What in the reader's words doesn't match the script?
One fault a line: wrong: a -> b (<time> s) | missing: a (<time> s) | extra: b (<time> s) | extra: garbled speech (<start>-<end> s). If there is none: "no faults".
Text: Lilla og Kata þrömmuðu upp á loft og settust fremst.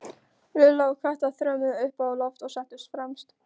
no faults